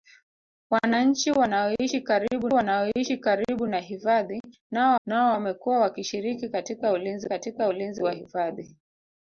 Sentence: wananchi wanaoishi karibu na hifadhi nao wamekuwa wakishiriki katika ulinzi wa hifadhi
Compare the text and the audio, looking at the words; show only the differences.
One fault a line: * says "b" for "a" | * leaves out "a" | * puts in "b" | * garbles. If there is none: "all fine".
* puts in "wanaoishi karibu"
* puts in "nao"
* puts in "katika ulinzi"